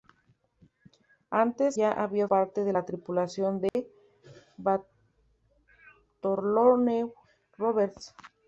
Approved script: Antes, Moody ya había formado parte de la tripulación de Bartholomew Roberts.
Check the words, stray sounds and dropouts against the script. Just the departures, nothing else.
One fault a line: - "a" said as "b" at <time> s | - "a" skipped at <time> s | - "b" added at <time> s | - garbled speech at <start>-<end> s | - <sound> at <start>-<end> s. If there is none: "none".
- "Moody" skipped at 1.8 s
- "formado" skipped at 2.3 s
- dropout at 3.7-3.7 s